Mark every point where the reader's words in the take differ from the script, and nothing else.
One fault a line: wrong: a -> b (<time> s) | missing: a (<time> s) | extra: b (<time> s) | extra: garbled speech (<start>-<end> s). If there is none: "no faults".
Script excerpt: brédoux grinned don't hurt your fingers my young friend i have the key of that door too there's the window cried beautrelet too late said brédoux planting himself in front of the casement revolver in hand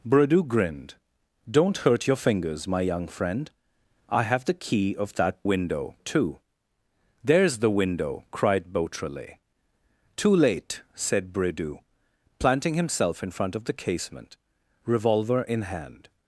wrong: door -> window (5.4 s)